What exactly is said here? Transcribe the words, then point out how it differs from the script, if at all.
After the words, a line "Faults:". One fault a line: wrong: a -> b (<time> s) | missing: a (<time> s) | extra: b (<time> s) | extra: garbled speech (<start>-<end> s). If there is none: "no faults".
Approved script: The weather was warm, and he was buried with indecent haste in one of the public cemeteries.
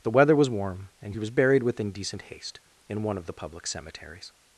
The weather was warm, and he was buried with indecent haste in one of the public cemeteries.
Faults:
no faults